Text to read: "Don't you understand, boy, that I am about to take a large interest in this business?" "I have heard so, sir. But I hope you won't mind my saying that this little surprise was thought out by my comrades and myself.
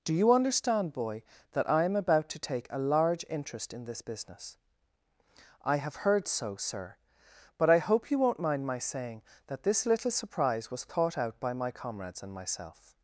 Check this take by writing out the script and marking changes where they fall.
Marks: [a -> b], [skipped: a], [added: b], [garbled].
["Don't -> Do] you understand, boy, that I am about to take a large interest in this business?" "I have heard so, sir. But I hope you won't mind my saying that this little surprise was thought out by my comrades and myself.